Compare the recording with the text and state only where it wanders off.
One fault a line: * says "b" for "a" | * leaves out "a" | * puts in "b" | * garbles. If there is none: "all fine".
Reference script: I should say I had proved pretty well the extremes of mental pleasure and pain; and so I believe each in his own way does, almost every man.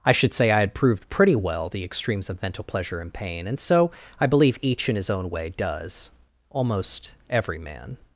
all fine